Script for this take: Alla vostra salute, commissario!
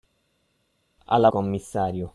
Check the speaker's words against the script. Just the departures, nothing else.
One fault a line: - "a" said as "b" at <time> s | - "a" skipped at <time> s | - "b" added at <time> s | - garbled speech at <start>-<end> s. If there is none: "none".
- "vostra salute" skipped at 1.3 s